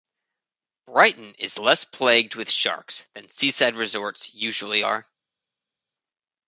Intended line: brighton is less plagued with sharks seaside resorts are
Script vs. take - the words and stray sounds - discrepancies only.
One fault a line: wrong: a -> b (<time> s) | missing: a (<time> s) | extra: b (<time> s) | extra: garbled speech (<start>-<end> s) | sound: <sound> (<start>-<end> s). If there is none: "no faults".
extra: than (3.1 s)
extra: usually (4.3 s)